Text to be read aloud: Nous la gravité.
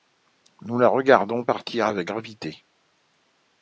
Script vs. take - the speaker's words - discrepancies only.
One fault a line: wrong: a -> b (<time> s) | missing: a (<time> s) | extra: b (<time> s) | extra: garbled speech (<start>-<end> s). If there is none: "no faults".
extra: regardons partir avec (0.9 s)